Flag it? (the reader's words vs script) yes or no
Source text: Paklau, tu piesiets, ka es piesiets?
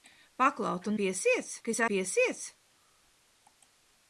no